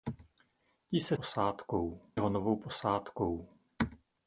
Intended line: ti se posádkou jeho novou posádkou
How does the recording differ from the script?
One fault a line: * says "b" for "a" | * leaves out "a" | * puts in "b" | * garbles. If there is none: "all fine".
all fine